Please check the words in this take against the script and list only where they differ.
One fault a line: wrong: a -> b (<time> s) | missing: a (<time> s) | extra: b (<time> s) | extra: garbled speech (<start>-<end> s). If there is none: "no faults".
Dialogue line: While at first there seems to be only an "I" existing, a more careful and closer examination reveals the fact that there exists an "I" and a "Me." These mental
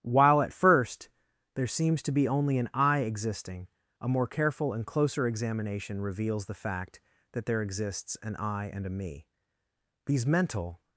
no faults